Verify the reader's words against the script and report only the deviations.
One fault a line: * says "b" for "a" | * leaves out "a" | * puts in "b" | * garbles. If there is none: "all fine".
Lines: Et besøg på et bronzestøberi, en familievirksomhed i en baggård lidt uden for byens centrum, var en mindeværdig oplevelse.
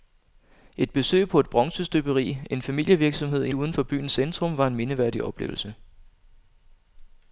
* leaves out "en baggård lidt"